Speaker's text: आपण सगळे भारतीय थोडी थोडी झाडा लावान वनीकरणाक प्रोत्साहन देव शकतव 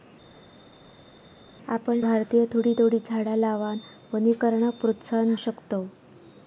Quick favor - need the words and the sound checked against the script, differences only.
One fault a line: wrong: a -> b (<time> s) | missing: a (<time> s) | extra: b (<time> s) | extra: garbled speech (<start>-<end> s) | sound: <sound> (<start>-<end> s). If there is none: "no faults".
missing: सगळे (2.0 s)
missing: देव (5.3 s)